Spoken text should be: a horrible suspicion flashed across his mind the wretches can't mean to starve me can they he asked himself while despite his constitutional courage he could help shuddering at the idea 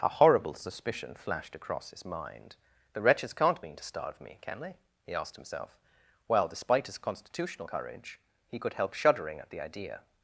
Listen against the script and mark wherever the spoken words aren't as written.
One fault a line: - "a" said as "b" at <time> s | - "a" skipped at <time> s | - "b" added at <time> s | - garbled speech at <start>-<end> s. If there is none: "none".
none